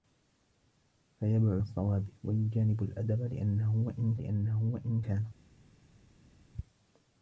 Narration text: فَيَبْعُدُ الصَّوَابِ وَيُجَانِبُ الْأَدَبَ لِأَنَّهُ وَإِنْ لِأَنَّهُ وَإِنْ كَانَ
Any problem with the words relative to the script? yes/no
no